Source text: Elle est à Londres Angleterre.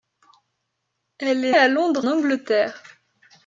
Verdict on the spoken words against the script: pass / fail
pass